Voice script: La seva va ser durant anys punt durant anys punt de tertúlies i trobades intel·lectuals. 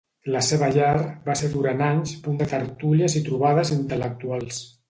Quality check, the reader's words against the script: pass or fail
fail